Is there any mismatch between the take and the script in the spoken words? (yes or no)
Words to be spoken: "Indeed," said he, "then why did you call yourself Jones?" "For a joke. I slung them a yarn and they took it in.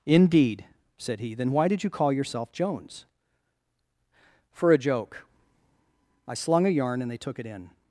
yes